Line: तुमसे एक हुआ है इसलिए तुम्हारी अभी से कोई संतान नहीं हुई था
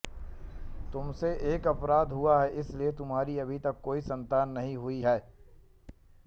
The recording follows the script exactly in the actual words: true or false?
false